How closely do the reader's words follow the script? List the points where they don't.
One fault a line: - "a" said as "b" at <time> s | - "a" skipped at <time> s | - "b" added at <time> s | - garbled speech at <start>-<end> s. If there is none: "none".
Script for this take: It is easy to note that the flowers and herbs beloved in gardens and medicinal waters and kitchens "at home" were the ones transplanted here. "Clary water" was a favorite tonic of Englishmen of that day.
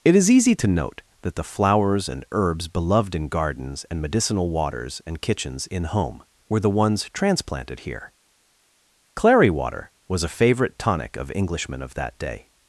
- "at" said as "in" at 5.7 s